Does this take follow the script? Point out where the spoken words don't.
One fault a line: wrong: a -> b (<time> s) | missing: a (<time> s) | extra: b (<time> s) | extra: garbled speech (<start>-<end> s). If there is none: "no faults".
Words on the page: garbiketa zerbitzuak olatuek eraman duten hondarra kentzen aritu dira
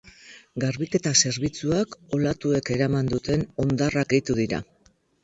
missing: kentzen (4.1 s)